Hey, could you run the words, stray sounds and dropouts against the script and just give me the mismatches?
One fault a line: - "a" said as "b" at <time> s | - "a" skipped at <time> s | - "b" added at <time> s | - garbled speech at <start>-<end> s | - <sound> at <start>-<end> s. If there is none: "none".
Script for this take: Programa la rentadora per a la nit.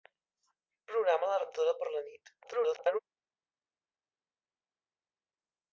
- garbled speech at 2.4-3.0 s